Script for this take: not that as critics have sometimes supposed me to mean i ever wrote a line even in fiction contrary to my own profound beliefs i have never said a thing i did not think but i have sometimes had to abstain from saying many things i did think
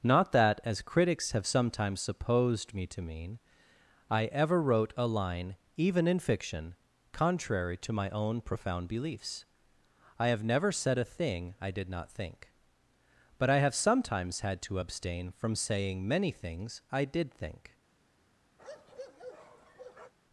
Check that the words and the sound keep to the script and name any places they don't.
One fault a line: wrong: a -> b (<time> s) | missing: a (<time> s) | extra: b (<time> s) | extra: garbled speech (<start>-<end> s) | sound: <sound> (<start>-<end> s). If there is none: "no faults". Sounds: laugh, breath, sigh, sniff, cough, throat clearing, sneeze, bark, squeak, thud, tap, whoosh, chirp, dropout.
sound: bark (18.6-20.1 s)